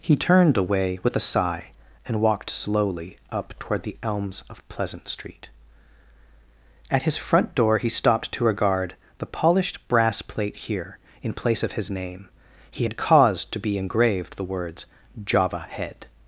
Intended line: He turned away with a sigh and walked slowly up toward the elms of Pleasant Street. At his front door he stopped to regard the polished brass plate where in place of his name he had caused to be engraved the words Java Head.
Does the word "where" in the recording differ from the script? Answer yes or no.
yes